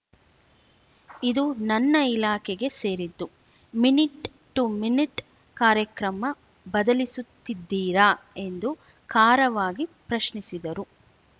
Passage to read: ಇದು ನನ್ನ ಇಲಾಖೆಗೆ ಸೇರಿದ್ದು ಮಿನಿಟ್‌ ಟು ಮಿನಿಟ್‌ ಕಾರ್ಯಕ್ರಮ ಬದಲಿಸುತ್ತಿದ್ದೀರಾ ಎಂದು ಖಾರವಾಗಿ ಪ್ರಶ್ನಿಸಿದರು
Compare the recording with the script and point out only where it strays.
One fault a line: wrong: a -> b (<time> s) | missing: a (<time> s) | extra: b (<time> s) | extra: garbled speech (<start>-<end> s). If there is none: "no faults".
no faults